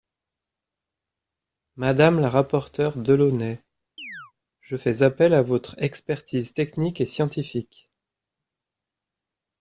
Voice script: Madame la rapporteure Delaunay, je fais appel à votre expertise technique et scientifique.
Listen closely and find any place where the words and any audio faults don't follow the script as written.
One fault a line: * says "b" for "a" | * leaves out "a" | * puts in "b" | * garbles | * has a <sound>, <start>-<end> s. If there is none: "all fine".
* has a chirp, 4.0-4.3 s